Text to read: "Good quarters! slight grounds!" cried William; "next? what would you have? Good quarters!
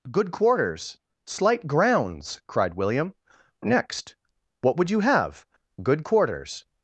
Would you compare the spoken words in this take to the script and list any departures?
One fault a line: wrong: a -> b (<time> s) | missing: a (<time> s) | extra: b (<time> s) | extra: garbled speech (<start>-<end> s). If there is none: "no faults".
no faults